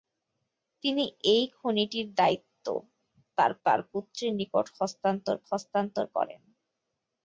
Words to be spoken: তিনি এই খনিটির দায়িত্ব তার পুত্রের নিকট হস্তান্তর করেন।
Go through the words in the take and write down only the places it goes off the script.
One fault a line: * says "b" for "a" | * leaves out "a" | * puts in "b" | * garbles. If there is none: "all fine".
* puts in "তার"
* puts in "হস্তান্তর"